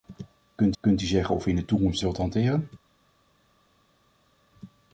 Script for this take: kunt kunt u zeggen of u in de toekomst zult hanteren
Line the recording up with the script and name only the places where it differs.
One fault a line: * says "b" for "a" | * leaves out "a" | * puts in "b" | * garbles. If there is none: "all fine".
all fine